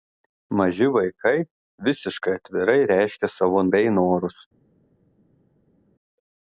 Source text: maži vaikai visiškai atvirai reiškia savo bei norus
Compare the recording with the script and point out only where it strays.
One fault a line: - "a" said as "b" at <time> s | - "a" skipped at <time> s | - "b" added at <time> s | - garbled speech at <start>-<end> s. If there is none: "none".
none